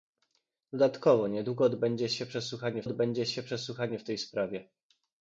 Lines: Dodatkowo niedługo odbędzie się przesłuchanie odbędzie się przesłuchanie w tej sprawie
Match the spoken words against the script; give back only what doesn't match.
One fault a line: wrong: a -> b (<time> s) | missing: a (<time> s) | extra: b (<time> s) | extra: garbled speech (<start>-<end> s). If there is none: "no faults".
no faults